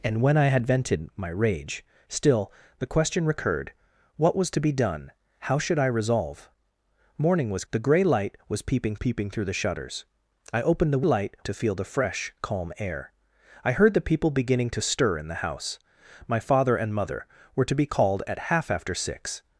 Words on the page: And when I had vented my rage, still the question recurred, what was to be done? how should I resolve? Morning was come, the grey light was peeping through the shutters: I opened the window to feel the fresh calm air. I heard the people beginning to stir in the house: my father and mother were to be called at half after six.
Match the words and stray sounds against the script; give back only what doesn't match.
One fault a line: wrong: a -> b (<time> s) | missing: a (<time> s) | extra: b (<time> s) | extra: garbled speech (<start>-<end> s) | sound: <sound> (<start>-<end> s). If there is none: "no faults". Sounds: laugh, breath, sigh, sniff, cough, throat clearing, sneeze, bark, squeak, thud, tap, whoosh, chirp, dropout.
missing: come (7.7 s)
extra: peeping (8.9 s)
wrong: window -> light (11.0 s)